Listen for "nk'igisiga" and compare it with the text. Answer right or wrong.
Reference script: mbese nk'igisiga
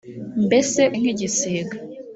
right